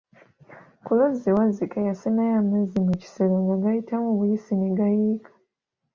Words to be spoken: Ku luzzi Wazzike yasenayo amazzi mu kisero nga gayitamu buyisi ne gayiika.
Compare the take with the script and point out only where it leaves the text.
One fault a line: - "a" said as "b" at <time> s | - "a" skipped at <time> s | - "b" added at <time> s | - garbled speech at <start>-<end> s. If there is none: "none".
none